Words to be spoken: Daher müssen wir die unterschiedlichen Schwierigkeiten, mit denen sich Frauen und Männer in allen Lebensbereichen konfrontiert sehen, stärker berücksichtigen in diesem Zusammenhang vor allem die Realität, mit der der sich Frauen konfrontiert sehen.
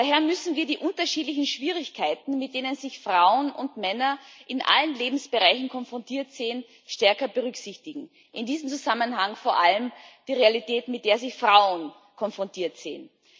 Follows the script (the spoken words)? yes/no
no